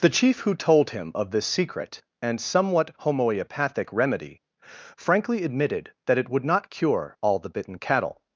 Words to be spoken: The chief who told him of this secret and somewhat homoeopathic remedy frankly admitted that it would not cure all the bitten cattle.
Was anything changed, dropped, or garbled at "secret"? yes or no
no